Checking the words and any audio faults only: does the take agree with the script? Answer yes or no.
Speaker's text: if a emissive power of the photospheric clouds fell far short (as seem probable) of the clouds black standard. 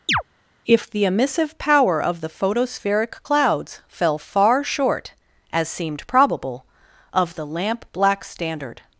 no